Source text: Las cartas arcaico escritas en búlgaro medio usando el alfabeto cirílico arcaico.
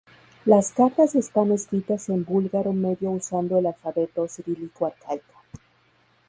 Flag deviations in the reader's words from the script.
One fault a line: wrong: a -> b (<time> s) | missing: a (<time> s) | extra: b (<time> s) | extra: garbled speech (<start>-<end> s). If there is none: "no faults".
wrong: arcaico -> están (1.1 s)